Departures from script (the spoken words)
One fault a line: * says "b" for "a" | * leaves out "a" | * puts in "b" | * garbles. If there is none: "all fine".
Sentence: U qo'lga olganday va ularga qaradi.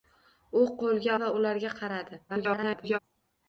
* leaves out "olganday"
* garbles